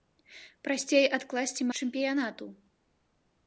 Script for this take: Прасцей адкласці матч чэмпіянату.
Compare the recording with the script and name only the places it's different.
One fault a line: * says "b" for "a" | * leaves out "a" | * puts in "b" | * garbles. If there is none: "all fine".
* leaves out "матч"